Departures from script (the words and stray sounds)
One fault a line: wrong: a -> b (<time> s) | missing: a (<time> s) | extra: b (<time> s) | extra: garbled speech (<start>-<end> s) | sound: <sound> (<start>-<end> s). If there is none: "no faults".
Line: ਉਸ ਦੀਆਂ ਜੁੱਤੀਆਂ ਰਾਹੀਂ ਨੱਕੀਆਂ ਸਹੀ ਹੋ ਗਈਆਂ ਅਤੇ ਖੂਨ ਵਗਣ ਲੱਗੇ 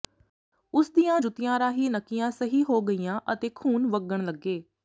no faults